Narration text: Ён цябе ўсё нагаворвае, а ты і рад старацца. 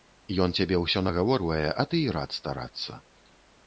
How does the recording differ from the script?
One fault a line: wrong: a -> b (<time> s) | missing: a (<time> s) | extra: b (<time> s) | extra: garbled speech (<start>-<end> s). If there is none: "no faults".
no faults